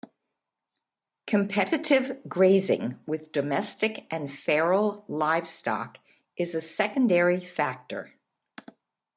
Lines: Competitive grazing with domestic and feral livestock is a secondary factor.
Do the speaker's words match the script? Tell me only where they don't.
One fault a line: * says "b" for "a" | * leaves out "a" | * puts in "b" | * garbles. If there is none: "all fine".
all fine